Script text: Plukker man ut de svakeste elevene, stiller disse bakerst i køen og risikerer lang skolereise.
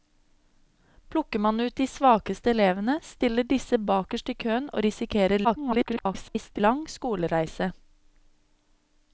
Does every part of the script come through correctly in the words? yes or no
no